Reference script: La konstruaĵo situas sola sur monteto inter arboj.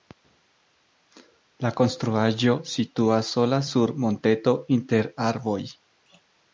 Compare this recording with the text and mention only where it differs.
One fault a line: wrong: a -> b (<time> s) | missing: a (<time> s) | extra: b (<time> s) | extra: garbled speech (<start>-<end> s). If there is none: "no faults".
no faults